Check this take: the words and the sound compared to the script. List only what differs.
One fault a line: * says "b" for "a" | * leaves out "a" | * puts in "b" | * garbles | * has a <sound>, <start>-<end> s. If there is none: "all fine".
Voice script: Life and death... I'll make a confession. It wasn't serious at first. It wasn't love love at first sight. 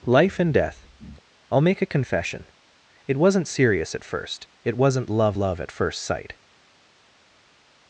all fine